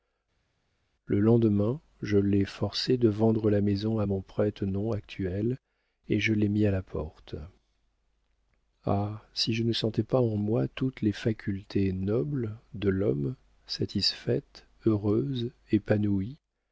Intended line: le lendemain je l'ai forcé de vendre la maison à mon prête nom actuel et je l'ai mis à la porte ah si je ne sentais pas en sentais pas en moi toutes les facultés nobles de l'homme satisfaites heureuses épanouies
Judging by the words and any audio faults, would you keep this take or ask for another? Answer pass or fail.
fail